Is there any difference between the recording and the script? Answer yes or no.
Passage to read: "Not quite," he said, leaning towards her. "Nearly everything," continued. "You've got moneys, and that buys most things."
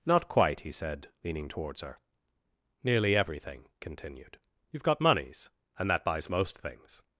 no